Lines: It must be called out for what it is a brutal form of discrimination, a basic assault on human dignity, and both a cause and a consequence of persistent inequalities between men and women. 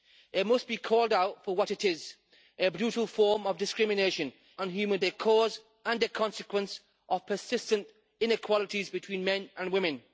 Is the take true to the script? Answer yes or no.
no